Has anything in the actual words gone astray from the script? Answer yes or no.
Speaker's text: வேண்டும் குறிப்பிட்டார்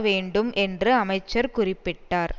yes